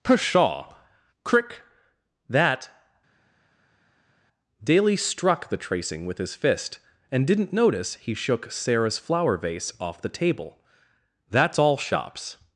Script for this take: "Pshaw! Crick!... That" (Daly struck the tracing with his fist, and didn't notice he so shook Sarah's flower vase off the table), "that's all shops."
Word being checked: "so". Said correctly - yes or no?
no